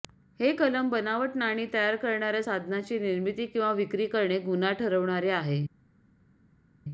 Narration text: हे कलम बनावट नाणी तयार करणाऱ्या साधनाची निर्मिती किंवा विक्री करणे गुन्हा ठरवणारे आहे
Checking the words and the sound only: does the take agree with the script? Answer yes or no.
yes